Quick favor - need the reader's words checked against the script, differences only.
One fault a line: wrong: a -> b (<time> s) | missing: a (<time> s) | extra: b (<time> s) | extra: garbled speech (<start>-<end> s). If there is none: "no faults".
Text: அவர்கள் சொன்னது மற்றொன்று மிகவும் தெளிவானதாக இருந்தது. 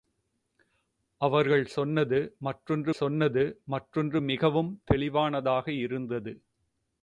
extra: சொன்னது மற்றொன்று (2.9 s)